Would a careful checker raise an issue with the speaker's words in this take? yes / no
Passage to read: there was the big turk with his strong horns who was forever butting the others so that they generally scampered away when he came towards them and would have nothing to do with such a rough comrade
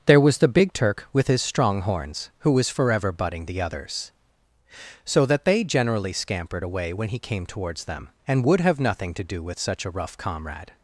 no